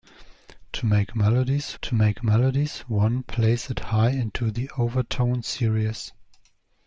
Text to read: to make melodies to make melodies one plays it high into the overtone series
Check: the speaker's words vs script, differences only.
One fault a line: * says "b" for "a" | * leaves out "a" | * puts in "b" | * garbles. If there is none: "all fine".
all fine